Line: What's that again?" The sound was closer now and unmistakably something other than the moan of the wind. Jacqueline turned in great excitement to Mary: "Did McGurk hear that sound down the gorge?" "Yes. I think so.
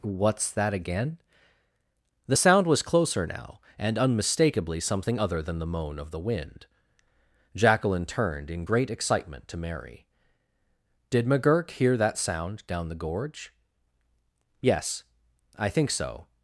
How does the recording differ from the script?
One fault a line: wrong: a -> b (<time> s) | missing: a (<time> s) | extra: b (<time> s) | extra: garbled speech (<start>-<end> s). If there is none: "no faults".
no faults